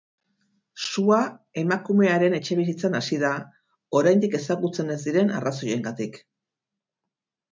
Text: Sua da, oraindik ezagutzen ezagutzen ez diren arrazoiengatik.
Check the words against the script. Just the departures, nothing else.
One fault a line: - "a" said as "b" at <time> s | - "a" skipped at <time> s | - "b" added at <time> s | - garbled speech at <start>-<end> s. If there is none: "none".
- "emakumearen etxebizitzan hasi" added at 1.6 s
- "ezagutzen" skipped at 4.9 s